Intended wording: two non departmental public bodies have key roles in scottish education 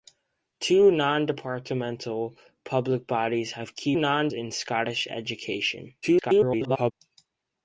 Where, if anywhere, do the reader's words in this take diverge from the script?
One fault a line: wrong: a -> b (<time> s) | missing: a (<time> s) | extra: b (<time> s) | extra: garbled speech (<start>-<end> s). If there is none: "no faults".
wrong: roles -> non (3.9 s)
extra: garbled speech (6.0-6.9 s)